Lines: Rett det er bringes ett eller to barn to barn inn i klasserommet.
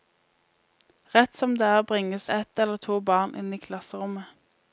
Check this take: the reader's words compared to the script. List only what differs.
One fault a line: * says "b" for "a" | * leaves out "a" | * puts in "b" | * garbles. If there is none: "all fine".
* puts in "som"
* leaves out "to barn"